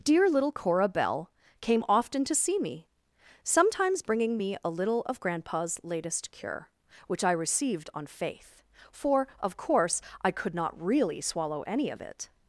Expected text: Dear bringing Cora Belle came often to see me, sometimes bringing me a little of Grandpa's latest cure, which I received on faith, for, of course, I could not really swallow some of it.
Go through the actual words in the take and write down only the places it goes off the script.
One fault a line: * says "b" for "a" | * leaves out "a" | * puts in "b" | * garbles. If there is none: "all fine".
* says "little" for "bringing"
* says "any" for "some"